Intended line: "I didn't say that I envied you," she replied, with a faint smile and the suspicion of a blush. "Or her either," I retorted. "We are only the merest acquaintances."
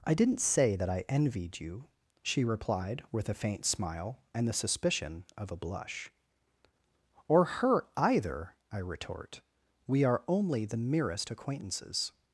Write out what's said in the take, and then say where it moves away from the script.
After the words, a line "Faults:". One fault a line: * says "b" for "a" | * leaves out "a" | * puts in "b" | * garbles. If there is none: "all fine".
"I didn't say that I envied you," she replied, with a faint smile and the suspicion of a blush. "Or her either," I retort. "We are only the merest acquaintances."
Faults:
* says "retort" for "retorted"